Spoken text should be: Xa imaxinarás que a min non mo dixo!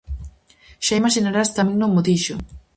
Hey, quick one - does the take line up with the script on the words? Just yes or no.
yes